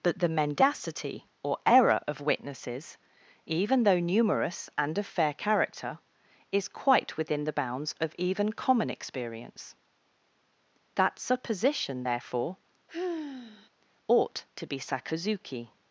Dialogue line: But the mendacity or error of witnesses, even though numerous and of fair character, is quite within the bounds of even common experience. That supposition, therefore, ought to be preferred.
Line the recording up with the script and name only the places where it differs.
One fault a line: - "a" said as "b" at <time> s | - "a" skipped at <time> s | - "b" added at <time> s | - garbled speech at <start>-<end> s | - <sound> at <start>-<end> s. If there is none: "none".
- sigh at 12.9-13.7 s
- "preferred" said as "sakazuki" at 14.8 s